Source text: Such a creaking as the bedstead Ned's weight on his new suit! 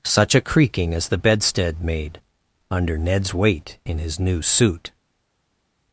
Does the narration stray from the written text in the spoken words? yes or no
yes